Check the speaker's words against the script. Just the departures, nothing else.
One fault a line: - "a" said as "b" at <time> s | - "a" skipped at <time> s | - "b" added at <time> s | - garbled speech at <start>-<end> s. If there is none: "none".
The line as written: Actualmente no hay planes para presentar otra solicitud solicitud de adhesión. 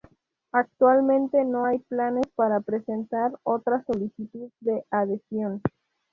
- "solicitud" skipped at 4.5 s